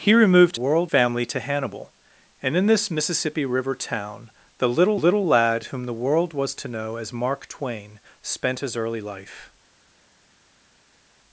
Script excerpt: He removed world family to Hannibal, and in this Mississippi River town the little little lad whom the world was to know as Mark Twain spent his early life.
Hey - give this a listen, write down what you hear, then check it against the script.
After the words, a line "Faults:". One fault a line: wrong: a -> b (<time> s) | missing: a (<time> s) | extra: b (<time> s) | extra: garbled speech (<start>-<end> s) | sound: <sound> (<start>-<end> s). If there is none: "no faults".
He removed world family to Hannibal, and in this Mississippi River town the little little lad whom the world was to know as Mark Twain spent his early life.
Faults:
no faults